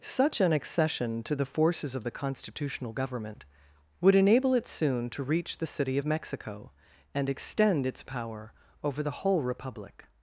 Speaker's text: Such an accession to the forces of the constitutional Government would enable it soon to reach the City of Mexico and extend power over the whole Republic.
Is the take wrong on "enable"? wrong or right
right